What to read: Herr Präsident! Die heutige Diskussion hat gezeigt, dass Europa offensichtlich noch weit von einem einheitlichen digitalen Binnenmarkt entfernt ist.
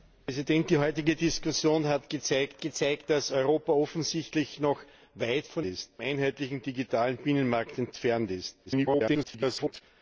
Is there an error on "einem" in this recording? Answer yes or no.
yes